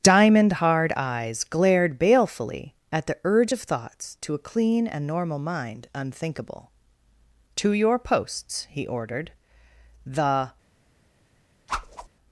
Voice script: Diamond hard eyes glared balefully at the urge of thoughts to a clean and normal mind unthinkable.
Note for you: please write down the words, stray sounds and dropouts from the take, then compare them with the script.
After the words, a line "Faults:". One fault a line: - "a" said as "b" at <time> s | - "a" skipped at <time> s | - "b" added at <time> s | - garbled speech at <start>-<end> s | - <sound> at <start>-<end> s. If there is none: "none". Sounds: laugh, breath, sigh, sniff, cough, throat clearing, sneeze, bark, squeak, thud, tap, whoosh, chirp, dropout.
Diamond hard eyes glared balefully at the urge of thoughts to a clean and normal mind unthinkable. "To your posts," he ordered. "The
Faults:
- "To your posts he ordered The" added at 7.6 s
- whoosh at 11.7-12.1 s